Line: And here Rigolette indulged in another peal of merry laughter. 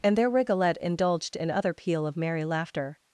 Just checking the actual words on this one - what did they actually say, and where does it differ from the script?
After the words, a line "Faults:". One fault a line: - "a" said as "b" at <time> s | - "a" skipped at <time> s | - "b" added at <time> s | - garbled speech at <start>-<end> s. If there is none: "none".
And there Rigolette indulged in other peal of merry laughter.
Faults:
- "here" said as "there" at 0.2 s
- "another" said as "other" at 1.5 s